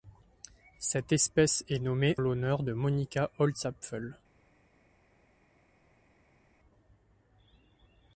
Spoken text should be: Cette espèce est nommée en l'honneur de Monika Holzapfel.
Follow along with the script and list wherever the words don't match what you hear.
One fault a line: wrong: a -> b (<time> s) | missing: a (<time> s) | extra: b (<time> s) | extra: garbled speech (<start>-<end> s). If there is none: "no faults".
missing: en (2.2 s)